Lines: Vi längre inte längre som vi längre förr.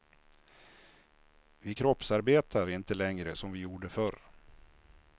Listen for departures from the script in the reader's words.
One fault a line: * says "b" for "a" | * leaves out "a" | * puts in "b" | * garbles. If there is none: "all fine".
* says "kroppsarbetar" for "längre"
* says "gjorde" for "längre"